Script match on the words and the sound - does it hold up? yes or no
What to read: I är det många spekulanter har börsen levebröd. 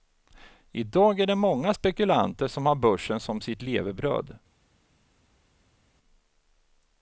no